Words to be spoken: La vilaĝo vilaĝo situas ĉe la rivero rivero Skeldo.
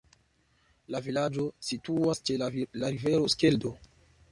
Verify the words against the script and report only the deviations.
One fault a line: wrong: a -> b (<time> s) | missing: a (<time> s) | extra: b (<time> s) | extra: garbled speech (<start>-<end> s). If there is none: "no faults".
missing: vilaĝo (1.4 s)
missing: rivero (3.3 s)